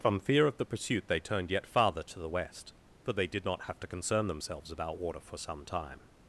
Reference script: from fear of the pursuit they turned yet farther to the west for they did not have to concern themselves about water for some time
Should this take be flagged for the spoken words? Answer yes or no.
no